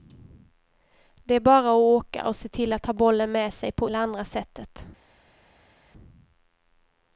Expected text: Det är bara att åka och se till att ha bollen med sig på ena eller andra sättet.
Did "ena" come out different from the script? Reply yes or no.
yes